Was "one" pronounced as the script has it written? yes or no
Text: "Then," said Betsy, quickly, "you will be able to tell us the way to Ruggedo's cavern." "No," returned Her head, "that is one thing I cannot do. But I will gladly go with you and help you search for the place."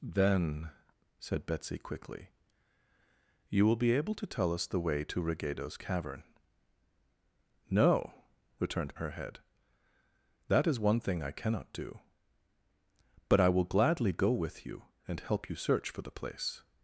yes